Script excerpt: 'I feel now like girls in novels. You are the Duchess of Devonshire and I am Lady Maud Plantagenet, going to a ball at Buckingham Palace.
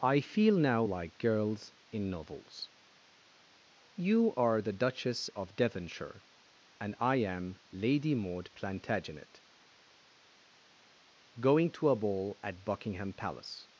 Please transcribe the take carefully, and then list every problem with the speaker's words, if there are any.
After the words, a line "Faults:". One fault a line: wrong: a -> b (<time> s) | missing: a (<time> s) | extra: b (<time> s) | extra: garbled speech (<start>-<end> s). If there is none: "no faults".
'I feel now like girls in novels. You are the Duchess of Devonshire and I am Lady Maud Plantagenet, going to a ball at Buckingham Palace.
Faults:
no faults